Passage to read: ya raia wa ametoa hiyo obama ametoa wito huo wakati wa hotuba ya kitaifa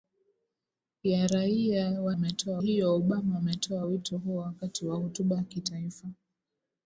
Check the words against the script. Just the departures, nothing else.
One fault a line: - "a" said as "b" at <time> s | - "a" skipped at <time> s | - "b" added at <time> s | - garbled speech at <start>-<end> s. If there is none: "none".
none